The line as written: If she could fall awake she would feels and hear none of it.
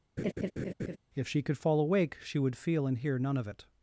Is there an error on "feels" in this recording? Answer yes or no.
yes